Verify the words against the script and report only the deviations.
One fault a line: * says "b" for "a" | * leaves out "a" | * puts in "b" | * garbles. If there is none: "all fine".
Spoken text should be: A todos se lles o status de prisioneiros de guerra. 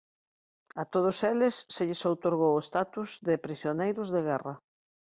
* puts in "eles"
* puts in "outorgou"